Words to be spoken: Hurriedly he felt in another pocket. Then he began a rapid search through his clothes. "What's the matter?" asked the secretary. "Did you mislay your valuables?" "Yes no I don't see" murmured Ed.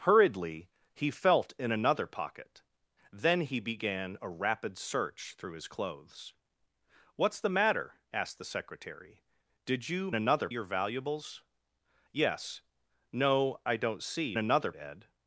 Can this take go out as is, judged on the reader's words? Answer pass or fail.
fail